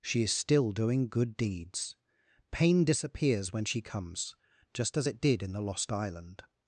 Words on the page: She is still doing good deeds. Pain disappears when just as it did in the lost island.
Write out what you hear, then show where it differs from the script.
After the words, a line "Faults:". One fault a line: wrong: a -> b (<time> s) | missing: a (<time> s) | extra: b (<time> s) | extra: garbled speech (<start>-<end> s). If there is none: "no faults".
She is still doing good deeds. Pain disappears when she comes, just as it did in the lost island.
Faults:
extra: she comes (3.6 s)